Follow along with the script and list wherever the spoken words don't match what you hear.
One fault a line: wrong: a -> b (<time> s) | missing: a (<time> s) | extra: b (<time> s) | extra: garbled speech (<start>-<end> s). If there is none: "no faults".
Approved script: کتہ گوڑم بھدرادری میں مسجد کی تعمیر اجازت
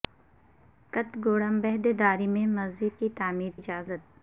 no faults